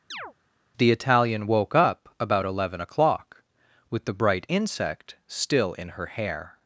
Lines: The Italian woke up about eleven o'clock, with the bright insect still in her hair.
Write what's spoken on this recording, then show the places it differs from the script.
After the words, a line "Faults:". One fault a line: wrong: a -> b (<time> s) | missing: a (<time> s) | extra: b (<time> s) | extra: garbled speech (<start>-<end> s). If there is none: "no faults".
The Italian woke up about eleven o'clock, with the bright insect still in her hair.
Faults:
no faults